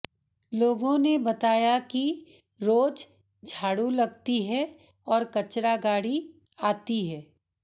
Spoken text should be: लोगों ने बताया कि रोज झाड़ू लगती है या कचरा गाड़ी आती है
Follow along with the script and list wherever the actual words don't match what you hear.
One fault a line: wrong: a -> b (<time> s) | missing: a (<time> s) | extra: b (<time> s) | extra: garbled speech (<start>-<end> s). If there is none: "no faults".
wrong: या -> और (5.1 s)